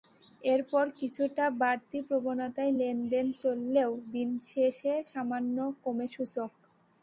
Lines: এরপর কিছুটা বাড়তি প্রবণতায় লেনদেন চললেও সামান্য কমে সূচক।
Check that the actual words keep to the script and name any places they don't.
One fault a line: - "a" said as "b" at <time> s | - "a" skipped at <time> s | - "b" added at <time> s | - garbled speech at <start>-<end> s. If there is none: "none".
- "দিন শেষে" added at 4.1 s